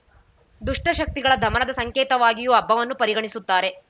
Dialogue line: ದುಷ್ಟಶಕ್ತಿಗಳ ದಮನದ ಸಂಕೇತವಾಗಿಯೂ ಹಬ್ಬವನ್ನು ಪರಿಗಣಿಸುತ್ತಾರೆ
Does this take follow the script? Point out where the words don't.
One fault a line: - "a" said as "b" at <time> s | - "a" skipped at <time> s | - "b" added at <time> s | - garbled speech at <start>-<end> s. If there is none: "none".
none